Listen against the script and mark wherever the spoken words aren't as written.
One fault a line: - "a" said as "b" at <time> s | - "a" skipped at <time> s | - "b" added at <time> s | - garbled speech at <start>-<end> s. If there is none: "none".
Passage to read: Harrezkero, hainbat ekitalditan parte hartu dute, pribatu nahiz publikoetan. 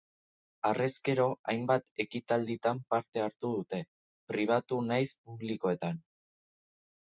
none